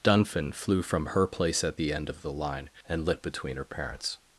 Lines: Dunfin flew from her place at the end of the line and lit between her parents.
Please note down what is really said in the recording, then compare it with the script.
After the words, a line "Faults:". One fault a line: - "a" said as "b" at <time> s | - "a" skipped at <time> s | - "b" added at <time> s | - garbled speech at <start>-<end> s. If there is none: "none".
Dunfin flew from her place at the end of the line and lit between her parents.
Faults:
none